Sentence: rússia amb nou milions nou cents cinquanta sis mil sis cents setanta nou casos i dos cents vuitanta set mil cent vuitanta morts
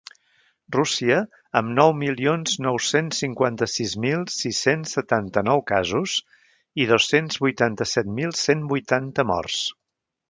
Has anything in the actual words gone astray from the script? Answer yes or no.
no